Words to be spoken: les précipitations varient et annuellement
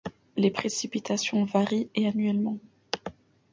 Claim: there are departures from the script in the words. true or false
false